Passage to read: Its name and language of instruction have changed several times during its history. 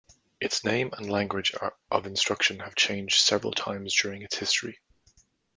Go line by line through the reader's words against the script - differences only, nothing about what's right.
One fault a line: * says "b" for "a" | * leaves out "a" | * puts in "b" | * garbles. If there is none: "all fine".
all fine